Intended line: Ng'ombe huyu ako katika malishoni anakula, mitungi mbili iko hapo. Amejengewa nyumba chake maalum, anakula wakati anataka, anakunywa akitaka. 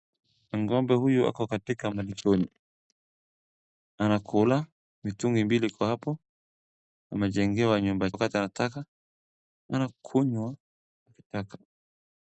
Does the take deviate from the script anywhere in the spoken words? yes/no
yes